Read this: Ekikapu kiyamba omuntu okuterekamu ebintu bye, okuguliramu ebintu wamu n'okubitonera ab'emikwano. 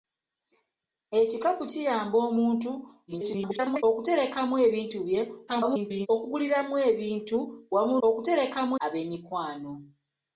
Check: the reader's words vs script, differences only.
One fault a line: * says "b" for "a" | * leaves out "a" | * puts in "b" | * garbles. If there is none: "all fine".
* garbles
* garbles
* says "okuterekamu" for "n'okubitonera"